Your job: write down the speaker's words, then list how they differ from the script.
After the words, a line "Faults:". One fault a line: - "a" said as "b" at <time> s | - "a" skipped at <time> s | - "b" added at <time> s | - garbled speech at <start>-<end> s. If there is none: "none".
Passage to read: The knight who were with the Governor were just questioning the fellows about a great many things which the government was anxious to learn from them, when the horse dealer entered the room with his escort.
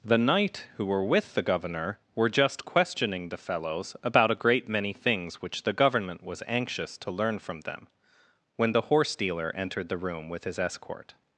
The knight who were with the Governor were just questioning the fellows about a great many things which the government was anxious to learn from them, when the horse dealer entered the room with his escort.
Faults:
none